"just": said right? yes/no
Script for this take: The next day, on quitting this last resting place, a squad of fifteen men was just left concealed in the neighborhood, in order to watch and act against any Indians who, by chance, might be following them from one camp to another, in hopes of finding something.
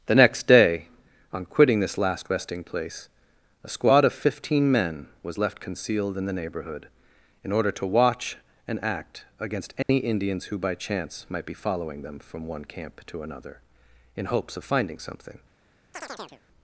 no